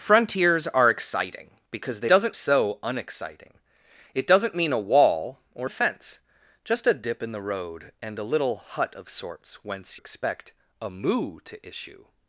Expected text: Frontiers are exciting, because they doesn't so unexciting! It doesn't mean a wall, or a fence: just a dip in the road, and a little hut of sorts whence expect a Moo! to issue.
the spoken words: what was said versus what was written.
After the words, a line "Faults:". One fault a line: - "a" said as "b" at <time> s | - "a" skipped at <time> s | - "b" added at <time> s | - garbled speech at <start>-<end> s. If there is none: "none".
Frontiers are exciting, because they doesn't so unexciting! It doesn't mean a wall, or a fence: just a dip in the road, and a little hut of sorts whence expect a Moo! to issue.
Faults:
none